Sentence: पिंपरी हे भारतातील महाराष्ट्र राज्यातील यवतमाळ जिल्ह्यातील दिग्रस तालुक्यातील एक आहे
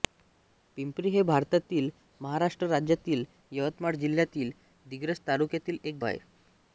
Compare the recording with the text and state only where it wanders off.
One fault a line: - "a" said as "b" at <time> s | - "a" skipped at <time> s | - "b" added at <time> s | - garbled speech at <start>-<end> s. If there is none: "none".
none